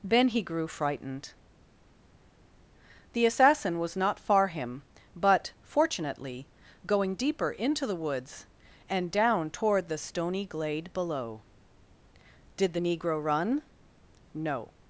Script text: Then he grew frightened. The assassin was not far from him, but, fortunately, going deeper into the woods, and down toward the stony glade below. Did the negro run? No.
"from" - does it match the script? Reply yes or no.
no